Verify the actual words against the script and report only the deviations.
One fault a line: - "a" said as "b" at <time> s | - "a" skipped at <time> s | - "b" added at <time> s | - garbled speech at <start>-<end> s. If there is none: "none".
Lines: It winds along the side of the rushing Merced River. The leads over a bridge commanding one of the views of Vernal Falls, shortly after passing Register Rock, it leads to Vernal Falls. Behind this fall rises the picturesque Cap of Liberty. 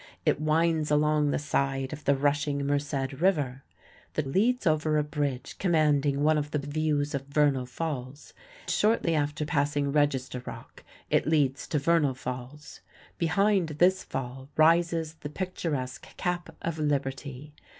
none